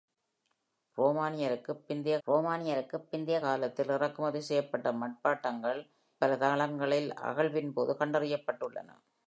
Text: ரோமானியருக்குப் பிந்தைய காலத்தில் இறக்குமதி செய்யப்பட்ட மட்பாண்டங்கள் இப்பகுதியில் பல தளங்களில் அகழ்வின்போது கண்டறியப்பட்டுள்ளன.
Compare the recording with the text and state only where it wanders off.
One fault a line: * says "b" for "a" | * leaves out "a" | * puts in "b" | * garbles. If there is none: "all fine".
* puts in "ரோமானியருக்குப் பிந்தைய"
* leaves out "இப்பகுதியில்"